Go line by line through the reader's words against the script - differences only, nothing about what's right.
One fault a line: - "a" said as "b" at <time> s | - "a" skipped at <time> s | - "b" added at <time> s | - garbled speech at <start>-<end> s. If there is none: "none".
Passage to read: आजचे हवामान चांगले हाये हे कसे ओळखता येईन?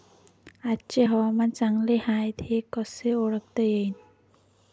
none